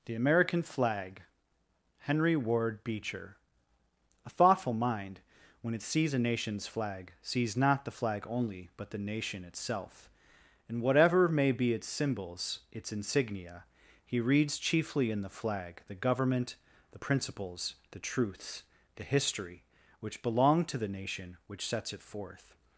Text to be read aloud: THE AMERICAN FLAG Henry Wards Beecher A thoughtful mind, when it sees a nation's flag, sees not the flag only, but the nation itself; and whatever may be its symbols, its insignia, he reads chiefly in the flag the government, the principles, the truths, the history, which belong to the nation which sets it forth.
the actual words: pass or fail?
fail